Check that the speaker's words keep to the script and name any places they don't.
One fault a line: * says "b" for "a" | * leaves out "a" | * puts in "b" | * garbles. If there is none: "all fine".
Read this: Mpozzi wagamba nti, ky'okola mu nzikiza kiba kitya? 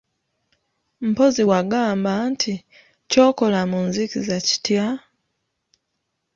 * leaves out "kiba"